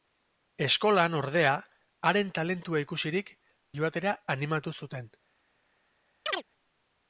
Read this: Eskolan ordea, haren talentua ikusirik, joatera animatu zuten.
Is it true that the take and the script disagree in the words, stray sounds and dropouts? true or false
true